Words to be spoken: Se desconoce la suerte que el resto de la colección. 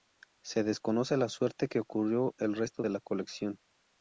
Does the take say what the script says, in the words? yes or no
no